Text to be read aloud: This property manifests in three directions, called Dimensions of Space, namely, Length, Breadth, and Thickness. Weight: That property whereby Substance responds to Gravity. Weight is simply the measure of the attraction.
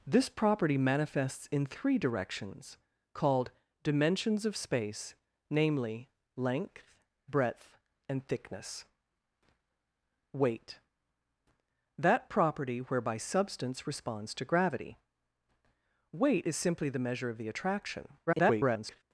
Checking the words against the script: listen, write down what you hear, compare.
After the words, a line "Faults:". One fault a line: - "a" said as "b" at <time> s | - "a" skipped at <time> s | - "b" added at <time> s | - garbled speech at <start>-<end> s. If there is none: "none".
This property manifests in three directions, called Dimensions of Space, namely, Length, Breadth, and Thickness. Weight: That property whereby Substance responds to Gravity. Weight is simply the measure of the attraction. [garbled]
Faults:
- garbled speech at 18.3-19.0 s